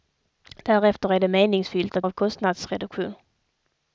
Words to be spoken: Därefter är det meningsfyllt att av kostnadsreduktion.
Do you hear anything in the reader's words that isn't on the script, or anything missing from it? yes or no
no